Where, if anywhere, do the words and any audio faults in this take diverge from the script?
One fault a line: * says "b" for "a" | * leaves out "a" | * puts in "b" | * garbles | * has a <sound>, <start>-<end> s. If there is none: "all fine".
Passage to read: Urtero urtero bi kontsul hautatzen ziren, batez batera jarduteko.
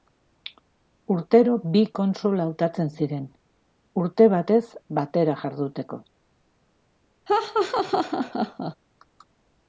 * leaves out "urtero"
* puts in "urte"
* has a laugh, 7.3-8.8 s